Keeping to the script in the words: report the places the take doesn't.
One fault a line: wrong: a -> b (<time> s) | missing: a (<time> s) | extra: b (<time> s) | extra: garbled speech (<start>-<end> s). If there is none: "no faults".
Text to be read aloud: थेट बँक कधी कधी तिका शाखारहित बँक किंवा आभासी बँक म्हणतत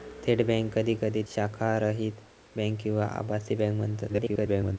missing: तिका (1.2 s)
extra: garbled speech (4.1-4.8 s)